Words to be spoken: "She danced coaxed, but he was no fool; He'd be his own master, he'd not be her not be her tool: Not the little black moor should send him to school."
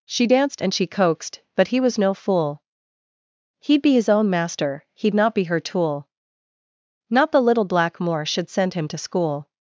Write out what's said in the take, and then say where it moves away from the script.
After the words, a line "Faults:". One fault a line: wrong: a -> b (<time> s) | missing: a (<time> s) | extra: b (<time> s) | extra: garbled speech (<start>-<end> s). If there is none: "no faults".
"She danced and she coaxed, but he was no fool; He'd be his own master, he'd not be her tool: Not the little black moor should send him to school."
Faults:
extra: and she (0.6 s)
missing: not be her (5.6 s)